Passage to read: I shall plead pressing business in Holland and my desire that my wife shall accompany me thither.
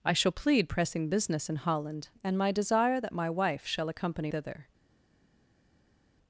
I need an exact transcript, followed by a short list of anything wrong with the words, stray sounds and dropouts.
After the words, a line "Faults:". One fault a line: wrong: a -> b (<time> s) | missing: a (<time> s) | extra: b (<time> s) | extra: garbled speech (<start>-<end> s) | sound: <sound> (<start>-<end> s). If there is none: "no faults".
I shall plead pressing business in Holland and my desire that my wife shall accompany thither.
Faults:
missing: me (4.3 s)